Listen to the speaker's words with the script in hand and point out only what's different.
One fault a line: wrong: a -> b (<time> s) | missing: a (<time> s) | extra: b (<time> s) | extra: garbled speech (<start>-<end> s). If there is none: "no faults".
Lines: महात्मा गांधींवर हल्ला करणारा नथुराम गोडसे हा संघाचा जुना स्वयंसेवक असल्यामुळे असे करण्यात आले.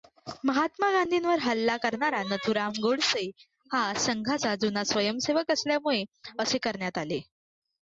no faults